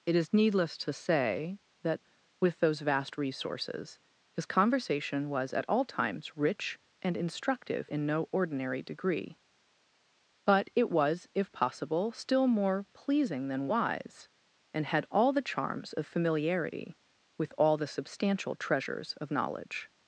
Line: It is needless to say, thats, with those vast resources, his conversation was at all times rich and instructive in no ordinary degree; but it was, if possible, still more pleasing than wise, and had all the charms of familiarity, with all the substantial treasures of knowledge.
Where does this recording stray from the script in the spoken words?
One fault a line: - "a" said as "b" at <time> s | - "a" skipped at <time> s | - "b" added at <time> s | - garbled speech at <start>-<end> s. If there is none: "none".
- "thats" said as "that" at 1.8 s